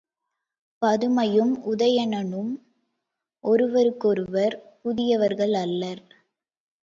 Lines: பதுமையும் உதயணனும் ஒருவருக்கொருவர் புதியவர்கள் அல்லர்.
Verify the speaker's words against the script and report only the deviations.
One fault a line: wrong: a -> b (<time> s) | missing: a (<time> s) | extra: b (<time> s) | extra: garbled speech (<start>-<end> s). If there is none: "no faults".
no faults